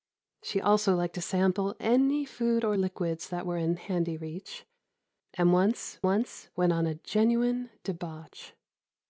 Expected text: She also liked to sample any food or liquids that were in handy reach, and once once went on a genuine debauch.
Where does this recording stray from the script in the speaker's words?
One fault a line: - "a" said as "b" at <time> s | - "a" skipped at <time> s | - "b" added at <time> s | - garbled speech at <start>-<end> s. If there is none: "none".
none